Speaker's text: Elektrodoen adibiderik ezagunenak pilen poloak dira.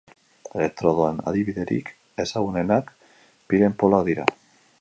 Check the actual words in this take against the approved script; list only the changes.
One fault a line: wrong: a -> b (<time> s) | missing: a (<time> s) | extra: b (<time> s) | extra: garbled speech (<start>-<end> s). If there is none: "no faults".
no faults